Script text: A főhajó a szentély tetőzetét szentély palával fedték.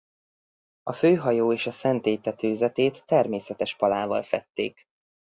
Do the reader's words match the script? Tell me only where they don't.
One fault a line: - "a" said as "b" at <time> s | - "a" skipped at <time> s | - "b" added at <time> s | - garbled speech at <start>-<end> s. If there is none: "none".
- "és" added at 1.5 s
- "szentély" said as "természetes" at 3.0 s